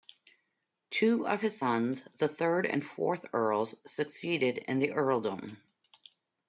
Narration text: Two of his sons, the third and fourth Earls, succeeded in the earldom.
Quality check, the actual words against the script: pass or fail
pass